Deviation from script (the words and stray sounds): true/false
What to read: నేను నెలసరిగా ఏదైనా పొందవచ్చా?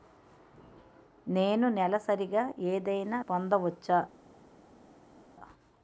false